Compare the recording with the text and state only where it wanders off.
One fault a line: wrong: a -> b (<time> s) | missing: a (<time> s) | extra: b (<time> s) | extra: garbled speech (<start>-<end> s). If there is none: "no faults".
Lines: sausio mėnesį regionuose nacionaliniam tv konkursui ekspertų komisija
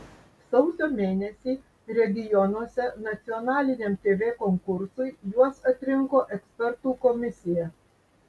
extra: juos atrinko (5.3 s)